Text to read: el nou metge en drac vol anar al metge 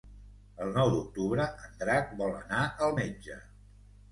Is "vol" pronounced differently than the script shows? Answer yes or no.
no